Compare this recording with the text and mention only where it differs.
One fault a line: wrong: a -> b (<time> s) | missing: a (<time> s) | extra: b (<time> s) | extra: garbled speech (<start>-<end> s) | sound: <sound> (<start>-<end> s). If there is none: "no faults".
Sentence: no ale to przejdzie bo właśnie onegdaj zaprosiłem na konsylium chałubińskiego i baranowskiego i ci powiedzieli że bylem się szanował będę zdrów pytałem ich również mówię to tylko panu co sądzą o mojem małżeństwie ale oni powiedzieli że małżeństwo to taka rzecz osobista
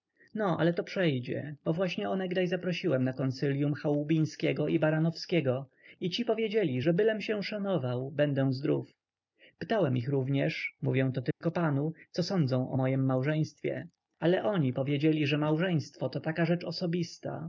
sound: dropout (11.3-11.4 s)